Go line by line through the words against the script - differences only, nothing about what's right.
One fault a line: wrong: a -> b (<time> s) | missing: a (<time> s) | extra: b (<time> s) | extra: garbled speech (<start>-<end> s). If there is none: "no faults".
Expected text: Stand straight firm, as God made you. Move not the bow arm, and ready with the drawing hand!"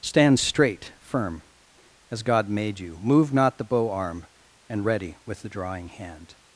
no faults